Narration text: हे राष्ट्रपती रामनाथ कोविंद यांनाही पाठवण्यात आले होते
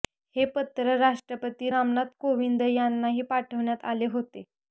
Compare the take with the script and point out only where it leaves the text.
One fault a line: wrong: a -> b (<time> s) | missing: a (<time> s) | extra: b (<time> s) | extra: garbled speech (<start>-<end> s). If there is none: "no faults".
extra: पत्र (0.5 s)